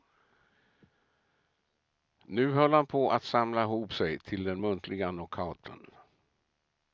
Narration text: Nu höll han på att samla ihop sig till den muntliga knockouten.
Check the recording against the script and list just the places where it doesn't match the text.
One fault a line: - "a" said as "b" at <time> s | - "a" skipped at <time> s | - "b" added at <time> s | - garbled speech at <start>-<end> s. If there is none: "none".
none